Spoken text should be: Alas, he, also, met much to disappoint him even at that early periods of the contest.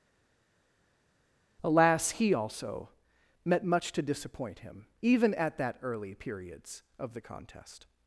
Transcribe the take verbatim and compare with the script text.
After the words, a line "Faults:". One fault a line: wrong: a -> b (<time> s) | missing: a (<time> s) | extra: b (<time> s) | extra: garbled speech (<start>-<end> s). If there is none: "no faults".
Alas, he, also, met much to disappoint him even at that early periods of the contest.
Faults:
no faults